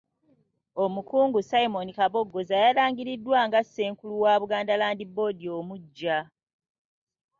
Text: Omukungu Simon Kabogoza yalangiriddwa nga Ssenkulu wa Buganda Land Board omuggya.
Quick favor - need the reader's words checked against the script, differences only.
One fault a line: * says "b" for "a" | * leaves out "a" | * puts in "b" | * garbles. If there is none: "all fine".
all fine